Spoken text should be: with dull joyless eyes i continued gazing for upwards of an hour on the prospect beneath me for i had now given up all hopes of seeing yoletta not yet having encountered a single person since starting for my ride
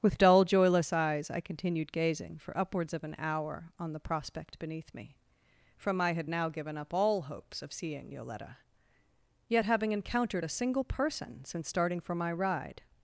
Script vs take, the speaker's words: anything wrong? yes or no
yes